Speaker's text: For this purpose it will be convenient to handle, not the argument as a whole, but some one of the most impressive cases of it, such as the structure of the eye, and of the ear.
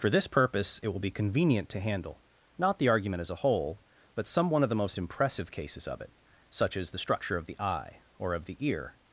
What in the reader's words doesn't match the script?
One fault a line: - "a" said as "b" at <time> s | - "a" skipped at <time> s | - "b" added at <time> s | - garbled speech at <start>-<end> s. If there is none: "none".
- "and" said as "or" at 8.2 s